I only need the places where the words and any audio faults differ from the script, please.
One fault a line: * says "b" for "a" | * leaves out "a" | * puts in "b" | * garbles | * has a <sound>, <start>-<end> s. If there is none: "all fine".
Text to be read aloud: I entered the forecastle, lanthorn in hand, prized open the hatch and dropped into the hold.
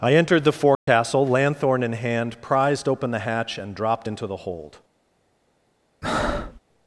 * has a dropout, 0.7-0.9 s
* has a breath, 6.0-6.6 s